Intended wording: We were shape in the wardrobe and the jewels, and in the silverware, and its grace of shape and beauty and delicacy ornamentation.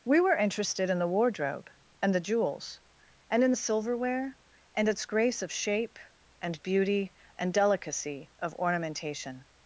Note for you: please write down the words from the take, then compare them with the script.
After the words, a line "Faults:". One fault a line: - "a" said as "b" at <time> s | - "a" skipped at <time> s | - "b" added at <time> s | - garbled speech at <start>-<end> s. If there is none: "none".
We were interested in the wardrobe and the jewels, and in the silverware, and its grace of shape and beauty and delicacy of ornamentation.
Faults:
- "shape" said as "interested" at 0.3 s
- "of" added at 8.4 s